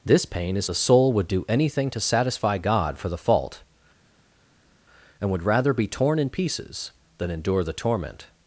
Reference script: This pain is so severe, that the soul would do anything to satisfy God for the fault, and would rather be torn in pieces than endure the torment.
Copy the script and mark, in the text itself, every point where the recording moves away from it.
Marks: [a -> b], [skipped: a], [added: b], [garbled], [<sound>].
This pain is [skipped: so severe, that] the soul would do anything to satisfy God for the fault, and would rather be torn in pieces than endure the torment.